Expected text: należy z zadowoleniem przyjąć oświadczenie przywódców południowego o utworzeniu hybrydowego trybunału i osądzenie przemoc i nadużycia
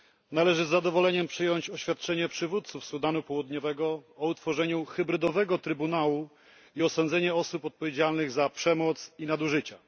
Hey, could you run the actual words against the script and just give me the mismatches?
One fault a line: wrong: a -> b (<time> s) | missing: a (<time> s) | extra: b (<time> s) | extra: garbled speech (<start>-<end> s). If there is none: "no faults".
extra: sudanu (2.9 s)
extra: osób odpowiedzialnych za (7.3 s)